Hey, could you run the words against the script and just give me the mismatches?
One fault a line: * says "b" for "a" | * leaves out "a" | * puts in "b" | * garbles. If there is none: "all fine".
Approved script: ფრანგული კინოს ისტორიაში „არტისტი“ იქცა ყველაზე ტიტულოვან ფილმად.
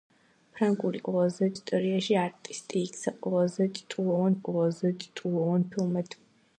* says "ყველაზე" for "კინოს"
* puts in "ყველაზე ტიტულოვან"